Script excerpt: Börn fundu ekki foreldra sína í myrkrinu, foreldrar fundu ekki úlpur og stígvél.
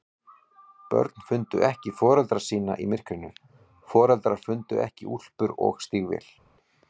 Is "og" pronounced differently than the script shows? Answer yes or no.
no